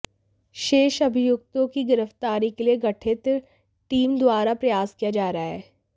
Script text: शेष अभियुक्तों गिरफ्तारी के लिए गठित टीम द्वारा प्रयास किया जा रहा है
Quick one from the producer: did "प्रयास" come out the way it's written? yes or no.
yes